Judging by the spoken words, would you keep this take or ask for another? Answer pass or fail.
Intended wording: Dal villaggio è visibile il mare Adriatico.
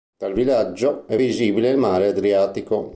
pass